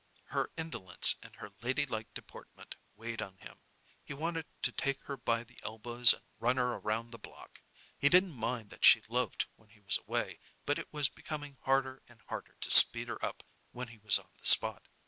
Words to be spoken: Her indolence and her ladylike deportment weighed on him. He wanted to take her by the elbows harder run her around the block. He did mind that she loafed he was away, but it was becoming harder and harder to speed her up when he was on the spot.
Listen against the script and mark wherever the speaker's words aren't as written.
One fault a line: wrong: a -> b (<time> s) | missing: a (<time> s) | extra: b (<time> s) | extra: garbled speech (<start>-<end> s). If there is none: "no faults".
wrong: harder -> and (6.1 s)
wrong: did -> didn't (8.1 s)
extra: when (9.6 s)